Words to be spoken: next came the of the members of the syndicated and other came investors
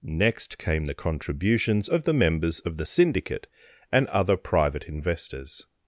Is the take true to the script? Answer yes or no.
no